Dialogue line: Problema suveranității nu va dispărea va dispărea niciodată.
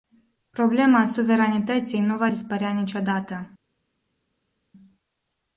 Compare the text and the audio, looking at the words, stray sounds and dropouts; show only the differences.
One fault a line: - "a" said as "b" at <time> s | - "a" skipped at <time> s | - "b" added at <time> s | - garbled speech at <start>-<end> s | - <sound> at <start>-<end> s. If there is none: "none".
- "va dispărea" skipped at 2.7 s